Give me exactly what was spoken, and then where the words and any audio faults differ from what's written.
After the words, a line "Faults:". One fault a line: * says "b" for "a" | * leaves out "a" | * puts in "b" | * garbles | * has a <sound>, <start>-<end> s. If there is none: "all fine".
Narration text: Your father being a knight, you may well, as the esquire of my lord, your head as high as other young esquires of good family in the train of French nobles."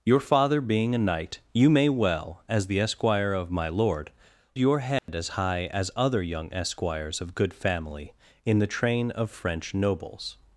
Your father being a knight, you may well, as the esquire of my lord, your head as high as other young esquires of good family in the train of French nobles."
Faults:
* has a dropout, 5.0-5.1 s